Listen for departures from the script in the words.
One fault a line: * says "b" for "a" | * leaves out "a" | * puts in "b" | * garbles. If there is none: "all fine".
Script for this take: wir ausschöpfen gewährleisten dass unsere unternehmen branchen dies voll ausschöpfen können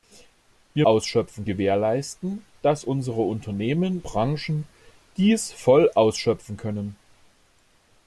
all fine